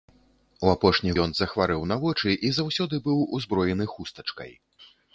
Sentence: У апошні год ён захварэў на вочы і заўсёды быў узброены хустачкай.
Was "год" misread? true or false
true